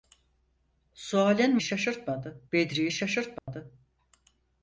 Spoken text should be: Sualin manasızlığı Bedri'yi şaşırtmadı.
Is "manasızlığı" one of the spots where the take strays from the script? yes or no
yes